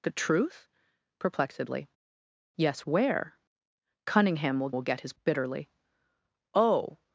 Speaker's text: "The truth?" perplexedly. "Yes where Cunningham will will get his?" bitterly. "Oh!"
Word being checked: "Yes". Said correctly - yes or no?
yes